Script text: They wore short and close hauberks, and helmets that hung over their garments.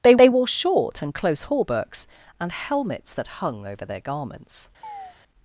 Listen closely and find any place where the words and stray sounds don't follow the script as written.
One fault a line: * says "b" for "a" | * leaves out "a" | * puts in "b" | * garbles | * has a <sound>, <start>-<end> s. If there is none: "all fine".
* puts in "they"
* has a chirp, 4.8-5.2 s